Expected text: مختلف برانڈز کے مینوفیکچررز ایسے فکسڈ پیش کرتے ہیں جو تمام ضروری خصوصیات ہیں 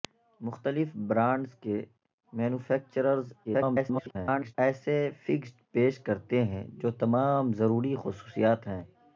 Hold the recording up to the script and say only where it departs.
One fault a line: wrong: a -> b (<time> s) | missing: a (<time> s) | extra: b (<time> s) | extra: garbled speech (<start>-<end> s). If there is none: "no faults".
extra: garbled speech (3.4-4.6 s)